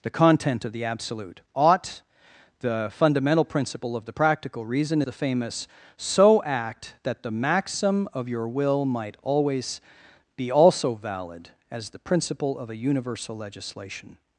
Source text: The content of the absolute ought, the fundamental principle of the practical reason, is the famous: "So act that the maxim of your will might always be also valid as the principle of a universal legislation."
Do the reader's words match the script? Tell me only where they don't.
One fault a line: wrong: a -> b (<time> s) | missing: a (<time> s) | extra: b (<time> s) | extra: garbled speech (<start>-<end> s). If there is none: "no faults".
missing: is (5.0 s)